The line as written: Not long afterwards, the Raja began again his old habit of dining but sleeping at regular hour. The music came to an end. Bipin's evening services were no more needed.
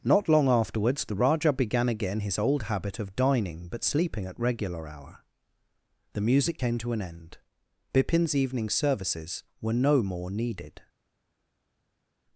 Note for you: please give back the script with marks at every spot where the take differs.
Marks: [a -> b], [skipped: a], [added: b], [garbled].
Not long afterwards, the Raja began again his old habit of dining but sleeping at regular hour. The music came to an end. Bipin's evening services were no more needed.